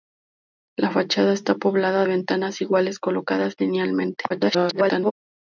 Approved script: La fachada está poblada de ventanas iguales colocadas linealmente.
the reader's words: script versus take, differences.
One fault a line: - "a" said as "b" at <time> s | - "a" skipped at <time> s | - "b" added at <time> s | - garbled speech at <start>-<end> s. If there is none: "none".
- "de" skipped at 2.1 s
- garbled speech at 4.3-5.1 s